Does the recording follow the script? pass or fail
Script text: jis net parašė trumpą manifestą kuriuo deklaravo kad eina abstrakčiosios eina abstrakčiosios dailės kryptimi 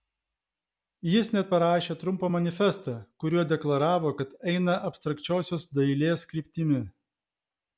fail